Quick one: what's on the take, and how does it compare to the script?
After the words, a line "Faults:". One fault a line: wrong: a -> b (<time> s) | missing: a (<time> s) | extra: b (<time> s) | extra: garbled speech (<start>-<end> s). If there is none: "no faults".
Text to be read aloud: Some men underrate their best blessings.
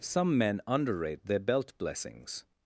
Some men underrate their belt blessings.
Faults:
wrong: best -> belt (1.4 s)